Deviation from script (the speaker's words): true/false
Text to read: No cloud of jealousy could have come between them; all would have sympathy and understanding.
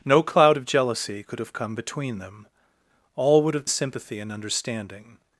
false